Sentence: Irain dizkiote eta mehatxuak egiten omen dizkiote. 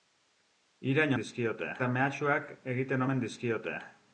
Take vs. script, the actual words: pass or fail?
pass